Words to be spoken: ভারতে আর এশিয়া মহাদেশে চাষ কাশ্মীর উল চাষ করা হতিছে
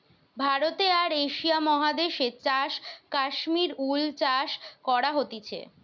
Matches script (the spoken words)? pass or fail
pass